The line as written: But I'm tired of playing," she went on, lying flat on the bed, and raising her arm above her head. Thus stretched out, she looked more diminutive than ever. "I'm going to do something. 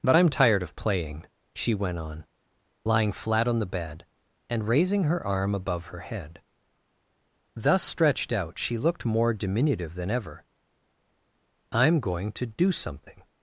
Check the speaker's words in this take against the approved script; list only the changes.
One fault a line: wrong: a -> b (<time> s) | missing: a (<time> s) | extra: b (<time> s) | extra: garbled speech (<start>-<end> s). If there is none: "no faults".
no faults